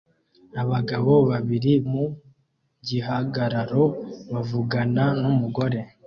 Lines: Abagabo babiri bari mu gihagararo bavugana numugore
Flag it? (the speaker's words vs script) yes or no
yes